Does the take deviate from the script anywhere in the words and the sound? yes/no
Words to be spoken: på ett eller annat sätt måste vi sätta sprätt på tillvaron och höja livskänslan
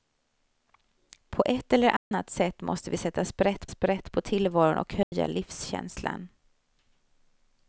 yes